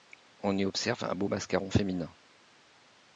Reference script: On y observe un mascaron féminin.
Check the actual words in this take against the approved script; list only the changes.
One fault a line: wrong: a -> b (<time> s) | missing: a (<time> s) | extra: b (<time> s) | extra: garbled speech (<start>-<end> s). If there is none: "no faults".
extra: beau (1.1 s)